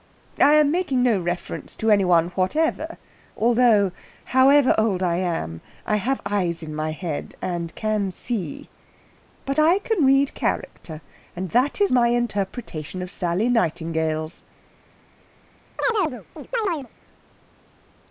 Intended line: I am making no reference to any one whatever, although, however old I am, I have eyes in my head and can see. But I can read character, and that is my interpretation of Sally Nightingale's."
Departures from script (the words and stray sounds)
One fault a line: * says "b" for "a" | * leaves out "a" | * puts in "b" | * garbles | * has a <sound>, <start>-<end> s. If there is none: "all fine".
* has a chirp, 15.8-16.9 s